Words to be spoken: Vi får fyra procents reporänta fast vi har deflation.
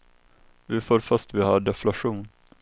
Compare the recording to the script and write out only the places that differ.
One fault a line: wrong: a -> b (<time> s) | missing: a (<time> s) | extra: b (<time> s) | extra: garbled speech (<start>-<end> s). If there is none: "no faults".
missing: fyra procents reporänta (1.0 s)